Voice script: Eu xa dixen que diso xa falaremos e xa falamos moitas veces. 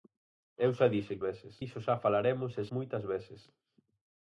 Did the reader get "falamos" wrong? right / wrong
wrong